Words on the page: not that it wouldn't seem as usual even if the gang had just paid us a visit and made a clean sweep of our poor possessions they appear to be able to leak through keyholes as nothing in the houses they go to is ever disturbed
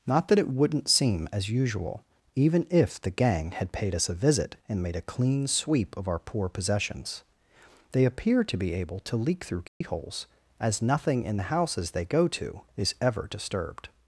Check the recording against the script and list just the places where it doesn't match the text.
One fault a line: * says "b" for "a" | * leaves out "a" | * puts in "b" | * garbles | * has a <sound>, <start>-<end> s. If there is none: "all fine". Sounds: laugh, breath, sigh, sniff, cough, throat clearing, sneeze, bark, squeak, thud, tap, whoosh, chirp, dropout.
* leaves out "just"
* has a dropout, 9.7-9.8 s